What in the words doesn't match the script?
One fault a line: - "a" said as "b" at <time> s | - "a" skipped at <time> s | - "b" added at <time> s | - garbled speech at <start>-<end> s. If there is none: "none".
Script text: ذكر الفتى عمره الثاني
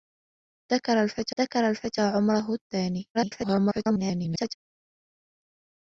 - "ذكر الفتى" added at 1.4 s
- garbled speech at 3.1-4.6 s